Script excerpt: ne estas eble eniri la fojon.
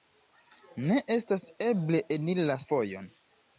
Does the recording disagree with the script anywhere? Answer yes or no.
no